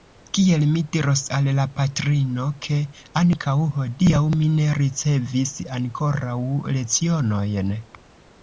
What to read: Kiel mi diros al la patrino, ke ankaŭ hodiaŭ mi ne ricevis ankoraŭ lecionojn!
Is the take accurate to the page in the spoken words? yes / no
yes